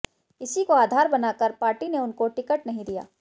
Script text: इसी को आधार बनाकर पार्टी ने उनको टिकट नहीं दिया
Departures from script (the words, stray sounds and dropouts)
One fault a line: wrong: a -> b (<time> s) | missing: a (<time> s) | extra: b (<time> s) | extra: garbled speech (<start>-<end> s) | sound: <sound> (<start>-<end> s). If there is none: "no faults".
no faults